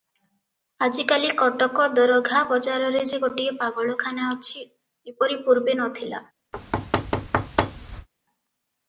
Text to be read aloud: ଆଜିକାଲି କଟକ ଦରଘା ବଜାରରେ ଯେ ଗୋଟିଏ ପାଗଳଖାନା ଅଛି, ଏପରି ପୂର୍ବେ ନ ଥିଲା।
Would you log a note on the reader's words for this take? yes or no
no